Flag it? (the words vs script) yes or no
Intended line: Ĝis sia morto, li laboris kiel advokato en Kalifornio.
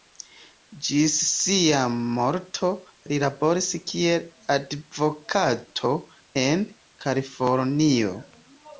no